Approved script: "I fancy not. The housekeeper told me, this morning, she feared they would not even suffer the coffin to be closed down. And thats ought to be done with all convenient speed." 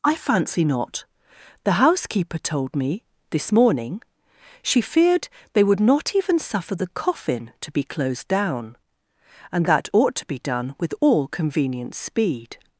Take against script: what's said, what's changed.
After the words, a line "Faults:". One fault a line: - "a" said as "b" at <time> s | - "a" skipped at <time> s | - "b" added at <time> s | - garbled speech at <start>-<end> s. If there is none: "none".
"I fancy not. The housekeeper told me, this morning, she feared they would not even suffer the coffin to be closed down. And that ought to be done with all convenient speed."
Faults:
- "thats" said as "that" at 9.7 s